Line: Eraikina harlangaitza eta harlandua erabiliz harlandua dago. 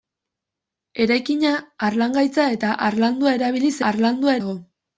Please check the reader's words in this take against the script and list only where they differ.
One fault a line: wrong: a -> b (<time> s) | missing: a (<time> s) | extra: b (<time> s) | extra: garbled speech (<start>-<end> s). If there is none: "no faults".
no faults